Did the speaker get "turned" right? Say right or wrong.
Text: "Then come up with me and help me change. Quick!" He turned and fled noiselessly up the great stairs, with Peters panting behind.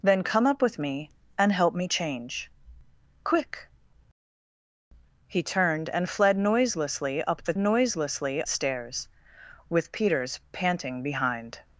right